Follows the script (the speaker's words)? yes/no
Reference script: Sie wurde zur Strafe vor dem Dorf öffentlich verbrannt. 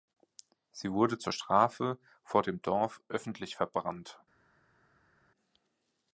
yes